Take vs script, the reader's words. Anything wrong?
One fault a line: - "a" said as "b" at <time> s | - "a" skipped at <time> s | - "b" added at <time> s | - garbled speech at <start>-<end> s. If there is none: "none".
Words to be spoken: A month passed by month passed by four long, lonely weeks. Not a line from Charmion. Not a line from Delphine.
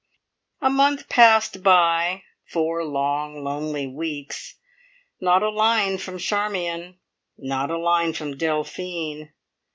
- "month passed by" skipped at 2.2 s